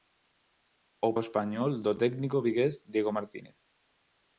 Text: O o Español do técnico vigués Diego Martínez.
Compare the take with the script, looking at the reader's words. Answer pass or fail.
pass